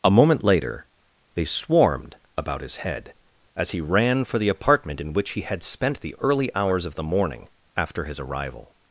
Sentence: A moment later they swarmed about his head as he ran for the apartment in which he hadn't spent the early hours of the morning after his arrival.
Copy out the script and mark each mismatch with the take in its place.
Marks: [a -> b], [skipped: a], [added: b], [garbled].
A moment later they swarmed about his head as he ran for the apartment in which he [hadn't -> had] spent the early hours of the morning after his arrival.